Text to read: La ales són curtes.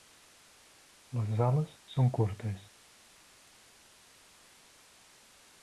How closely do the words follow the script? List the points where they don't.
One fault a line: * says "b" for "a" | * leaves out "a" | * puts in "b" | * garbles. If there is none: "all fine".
* says "Les" for "La"